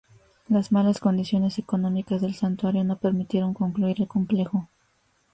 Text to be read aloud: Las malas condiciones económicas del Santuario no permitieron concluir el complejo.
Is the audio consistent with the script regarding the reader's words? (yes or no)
yes